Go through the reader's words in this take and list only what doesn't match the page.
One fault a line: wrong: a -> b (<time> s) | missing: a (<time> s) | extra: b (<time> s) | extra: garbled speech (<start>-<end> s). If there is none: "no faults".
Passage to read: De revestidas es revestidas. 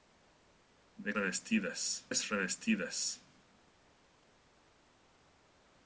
no faults